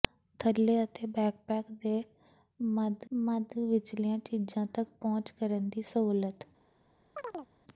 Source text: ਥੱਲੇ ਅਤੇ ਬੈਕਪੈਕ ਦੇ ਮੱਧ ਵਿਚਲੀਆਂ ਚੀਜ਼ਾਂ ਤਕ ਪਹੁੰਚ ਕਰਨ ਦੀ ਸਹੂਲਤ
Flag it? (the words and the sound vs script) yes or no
yes